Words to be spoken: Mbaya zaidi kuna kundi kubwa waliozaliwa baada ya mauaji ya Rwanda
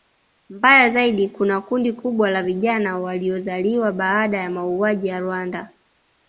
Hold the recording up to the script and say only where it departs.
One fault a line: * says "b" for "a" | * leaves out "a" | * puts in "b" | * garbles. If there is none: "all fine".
* puts in "la vijana"